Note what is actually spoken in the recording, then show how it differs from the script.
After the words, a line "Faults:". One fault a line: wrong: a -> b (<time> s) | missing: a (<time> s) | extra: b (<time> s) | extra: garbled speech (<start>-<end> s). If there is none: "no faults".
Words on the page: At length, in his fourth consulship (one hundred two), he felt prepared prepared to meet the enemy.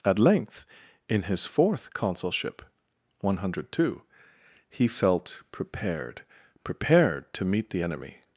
At length, in his fourth consulship (one hundred two), he felt prepared prepared to meet the enemy.
Faults:
no faults